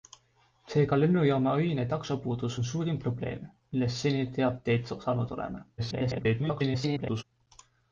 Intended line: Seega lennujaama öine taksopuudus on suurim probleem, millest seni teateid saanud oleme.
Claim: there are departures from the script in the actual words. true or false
true